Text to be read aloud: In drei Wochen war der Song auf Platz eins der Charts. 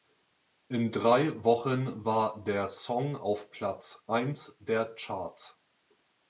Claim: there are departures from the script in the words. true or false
false